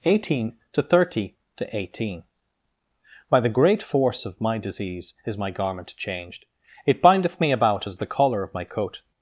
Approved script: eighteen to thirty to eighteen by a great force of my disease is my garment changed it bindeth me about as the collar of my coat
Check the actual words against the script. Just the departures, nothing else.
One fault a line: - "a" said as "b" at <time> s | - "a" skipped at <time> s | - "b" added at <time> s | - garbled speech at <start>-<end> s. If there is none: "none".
- "a" said as "the" at 3.4 s